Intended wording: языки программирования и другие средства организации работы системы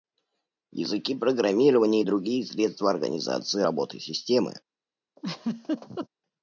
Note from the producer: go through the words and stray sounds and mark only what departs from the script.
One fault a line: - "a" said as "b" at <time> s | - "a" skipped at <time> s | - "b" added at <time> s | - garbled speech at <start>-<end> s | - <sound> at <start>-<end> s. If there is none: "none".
- laugh at 5.2-6.1 s